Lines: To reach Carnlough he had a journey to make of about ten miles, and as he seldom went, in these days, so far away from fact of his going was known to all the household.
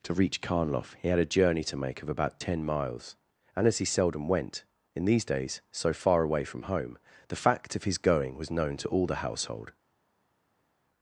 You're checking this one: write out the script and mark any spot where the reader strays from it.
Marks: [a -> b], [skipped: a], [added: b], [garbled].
To reach Carnlough he had a journey to make of about ten miles, and as he seldom went, in these days, so far away from [added: home the] fact of his going was known to all the household.